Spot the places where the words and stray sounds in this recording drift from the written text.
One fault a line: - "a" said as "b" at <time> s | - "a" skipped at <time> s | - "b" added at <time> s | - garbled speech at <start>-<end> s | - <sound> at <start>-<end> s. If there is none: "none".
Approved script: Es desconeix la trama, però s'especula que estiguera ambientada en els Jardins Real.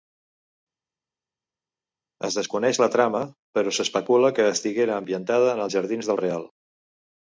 - "del" added at 6.1 s